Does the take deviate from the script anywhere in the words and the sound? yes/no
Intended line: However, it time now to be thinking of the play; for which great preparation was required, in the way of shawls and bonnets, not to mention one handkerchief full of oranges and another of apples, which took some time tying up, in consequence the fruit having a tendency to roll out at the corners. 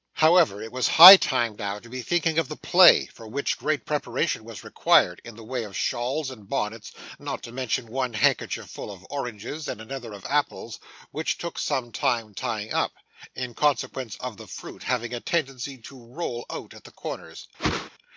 yes